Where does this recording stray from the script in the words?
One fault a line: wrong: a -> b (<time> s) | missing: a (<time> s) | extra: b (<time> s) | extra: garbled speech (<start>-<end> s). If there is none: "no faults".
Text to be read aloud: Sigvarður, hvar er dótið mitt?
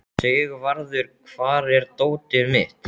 no faults